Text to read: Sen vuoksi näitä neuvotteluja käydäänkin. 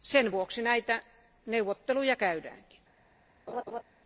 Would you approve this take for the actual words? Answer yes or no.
yes